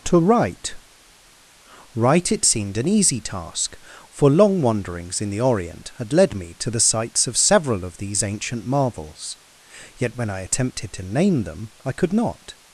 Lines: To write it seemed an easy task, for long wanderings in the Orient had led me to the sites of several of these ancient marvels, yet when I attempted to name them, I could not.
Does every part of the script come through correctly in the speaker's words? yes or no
no